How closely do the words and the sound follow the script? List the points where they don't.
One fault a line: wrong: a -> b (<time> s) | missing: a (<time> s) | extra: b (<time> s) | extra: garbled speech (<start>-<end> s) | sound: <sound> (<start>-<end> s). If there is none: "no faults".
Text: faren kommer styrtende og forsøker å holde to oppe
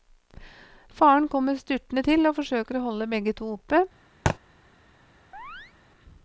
extra: til (2.1 s)
extra: begge (3.1 s)
sound: thud (4.3-4.4 s)
sound: chirp (5.3-5.7 s)